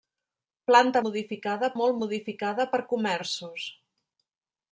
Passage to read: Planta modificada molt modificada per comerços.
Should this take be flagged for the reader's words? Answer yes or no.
no